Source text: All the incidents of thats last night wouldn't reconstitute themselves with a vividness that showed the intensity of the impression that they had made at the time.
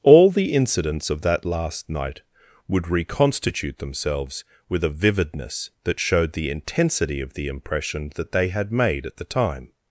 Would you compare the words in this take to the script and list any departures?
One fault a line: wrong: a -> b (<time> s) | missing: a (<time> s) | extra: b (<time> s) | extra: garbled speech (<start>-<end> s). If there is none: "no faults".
wrong: thats -> that (1.2 s)
wrong: wouldn't -> would (2.7 s)